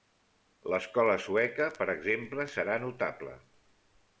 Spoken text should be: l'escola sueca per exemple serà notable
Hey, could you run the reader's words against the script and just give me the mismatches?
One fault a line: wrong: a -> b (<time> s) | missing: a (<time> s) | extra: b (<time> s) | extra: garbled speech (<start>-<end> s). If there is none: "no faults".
no faults